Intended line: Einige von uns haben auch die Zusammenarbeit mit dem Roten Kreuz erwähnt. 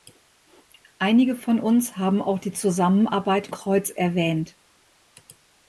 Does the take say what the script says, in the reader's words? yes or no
no